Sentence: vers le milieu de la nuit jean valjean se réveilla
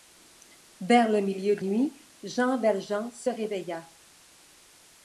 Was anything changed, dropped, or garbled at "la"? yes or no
yes